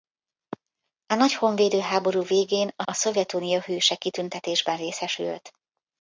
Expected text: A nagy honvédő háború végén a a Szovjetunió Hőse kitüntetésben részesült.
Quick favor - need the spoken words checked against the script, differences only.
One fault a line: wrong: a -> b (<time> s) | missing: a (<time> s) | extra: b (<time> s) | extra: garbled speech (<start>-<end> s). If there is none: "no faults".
no faults